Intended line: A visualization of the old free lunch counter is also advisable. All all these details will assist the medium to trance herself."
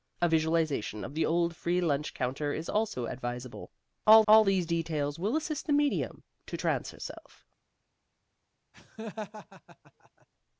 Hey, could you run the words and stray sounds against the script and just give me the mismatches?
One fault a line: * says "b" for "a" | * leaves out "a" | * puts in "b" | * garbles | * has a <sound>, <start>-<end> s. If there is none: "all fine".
* has a laugh, 8.7-10.3 s